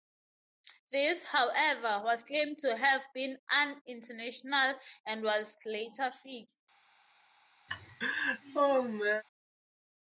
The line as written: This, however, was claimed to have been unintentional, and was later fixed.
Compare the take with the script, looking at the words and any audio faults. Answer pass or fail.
fail